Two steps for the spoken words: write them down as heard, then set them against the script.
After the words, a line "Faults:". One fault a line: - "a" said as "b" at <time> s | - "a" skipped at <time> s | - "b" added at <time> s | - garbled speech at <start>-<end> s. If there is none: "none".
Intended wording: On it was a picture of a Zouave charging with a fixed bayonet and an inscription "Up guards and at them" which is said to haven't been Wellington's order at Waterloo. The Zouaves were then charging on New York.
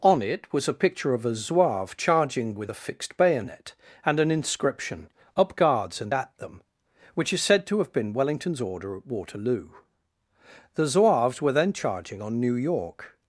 On it was a picture of a Zouave charging with a fixed bayonet and an inscription "Up guards and at them" which is said to have been Wellington's order at Waterloo. The Zouaves were then charging on New York.
Faults:
- "haven't" said as "have" at 7.8 s